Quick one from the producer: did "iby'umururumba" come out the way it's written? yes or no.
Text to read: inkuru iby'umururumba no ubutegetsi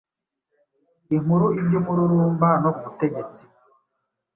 yes